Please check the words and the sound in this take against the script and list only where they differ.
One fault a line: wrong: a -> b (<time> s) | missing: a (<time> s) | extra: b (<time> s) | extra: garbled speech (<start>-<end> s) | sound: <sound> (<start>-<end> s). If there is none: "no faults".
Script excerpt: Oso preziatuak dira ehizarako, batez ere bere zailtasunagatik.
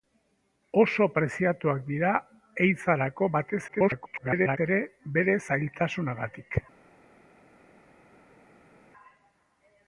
extra: garbled speech (3.7-4.6 s)